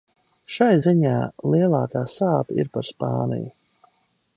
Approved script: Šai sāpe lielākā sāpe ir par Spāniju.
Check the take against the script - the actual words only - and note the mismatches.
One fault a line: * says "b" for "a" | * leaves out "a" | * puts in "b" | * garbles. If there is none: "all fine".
* says "ziņā" for "sāpe"